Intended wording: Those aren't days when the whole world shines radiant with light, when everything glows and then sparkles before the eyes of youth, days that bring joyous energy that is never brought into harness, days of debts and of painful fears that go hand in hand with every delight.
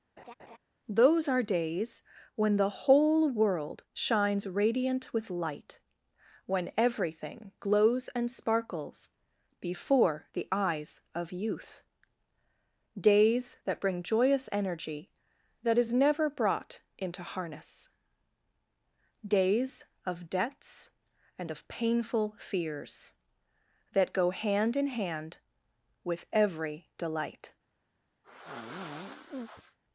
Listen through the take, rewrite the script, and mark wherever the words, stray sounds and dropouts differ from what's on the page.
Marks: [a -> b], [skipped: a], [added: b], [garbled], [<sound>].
[laugh] Those [aren't -> are] days when the whole world shines radiant with light, when everything glows and [skipped: then] sparkles before the eyes of youth, days that bring joyous energy that is never brought into harness, days of debts and of painful fears that go hand in hand with every delight. [sigh]